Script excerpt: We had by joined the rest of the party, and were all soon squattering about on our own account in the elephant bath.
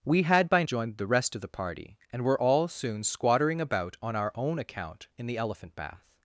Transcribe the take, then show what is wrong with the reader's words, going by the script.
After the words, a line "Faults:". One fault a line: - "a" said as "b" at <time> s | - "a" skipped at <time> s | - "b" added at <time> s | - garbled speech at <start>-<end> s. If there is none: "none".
We had by joined the rest of the party, and were all soon squattering about on our own account in the elephant bath.
Faults:
none